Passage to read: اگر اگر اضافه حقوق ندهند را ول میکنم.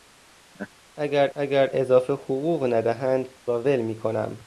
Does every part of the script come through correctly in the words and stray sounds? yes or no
no